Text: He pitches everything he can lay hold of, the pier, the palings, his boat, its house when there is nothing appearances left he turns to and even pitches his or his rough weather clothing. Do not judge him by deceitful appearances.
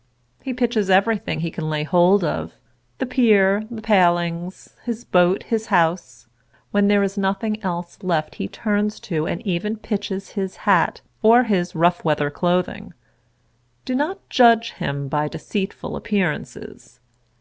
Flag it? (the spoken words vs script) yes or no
yes